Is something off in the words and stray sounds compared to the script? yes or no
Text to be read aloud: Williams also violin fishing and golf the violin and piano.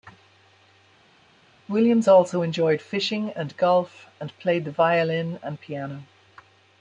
yes